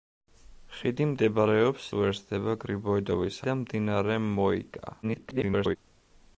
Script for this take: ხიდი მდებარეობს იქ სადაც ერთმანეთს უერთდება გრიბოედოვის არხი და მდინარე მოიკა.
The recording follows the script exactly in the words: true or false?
false